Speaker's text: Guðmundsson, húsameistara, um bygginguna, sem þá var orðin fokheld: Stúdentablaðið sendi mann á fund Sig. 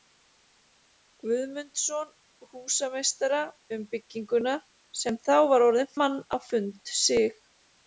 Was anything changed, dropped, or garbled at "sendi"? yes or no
yes